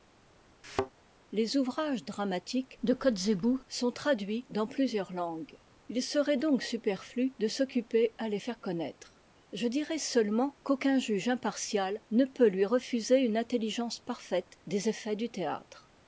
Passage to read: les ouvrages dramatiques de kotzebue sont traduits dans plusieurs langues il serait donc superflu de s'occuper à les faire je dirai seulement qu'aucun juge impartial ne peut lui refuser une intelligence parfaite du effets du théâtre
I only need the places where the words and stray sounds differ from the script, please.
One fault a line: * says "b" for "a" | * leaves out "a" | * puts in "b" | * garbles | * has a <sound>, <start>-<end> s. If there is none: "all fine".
* has a thud, 0.6-0.9 s
* puts in "connaître"
* says "des" for "du"